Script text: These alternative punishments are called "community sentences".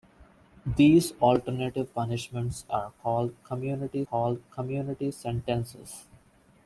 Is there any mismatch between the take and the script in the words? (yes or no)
yes